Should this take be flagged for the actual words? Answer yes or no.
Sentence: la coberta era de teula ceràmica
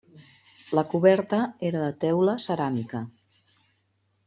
no